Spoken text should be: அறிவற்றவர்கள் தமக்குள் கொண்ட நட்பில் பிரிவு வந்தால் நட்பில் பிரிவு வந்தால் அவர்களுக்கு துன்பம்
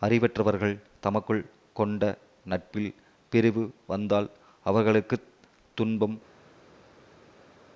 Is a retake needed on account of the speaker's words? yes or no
yes